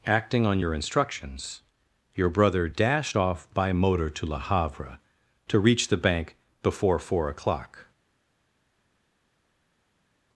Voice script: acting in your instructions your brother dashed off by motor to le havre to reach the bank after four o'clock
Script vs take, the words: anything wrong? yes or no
yes